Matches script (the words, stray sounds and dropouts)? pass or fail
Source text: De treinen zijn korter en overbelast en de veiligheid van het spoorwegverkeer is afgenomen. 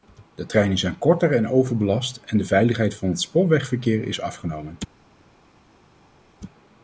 pass